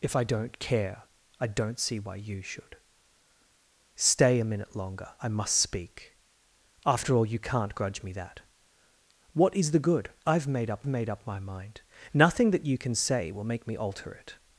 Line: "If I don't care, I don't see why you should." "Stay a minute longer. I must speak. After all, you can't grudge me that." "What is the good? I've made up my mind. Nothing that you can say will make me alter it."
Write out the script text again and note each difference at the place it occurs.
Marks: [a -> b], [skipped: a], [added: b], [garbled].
"If I don't care, I don't see why you should." "Stay a minute longer. I must speak. After all, you can't grudge me that." "What is the good? I've made up [added: made up] my mind. Nothing that you can say will make me alter it."